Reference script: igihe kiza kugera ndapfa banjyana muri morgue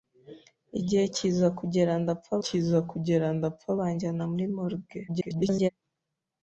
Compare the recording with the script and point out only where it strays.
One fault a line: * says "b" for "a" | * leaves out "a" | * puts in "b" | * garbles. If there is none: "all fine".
* puts in "kiza kugera ndapfa"
* garbles